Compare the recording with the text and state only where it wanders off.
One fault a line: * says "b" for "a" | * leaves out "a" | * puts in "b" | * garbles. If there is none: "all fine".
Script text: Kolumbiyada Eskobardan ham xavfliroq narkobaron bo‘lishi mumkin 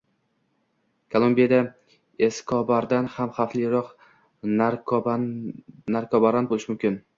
all fine